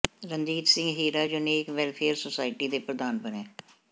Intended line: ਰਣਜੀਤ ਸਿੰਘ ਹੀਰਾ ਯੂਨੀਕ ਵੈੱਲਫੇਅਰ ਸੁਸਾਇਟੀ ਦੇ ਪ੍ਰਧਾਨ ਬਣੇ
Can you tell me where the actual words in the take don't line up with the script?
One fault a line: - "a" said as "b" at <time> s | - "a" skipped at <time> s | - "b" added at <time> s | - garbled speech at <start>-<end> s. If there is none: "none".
none